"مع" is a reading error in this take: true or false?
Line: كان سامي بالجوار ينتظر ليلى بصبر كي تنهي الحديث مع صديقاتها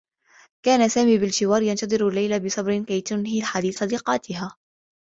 true